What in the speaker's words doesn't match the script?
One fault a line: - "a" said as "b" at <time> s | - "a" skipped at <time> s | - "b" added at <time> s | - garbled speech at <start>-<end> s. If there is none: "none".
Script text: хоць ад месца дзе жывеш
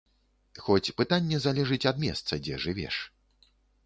- "пытанне залежыць" added at 1.0 s